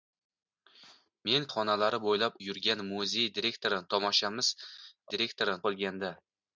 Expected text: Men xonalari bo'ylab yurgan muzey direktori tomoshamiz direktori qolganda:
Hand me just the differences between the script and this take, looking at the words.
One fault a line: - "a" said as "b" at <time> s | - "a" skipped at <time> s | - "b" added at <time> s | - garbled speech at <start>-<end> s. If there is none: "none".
none